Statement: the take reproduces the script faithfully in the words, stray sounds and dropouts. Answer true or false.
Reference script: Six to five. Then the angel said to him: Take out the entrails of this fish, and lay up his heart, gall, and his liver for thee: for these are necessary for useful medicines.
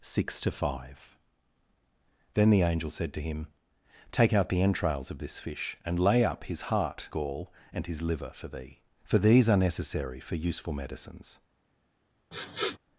false